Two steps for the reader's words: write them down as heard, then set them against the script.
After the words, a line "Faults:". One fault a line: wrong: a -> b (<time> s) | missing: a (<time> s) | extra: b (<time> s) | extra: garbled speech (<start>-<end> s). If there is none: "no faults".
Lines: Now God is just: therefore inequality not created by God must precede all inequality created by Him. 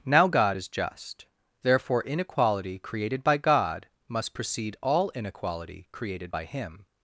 Now God is just: therefore inequality created by God must precede all inequality created by Him.
Faults:
missing: not (2.8 s)